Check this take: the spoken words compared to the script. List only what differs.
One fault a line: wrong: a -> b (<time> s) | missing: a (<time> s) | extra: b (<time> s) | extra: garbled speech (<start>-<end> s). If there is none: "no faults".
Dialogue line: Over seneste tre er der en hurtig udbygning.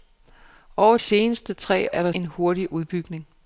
no faults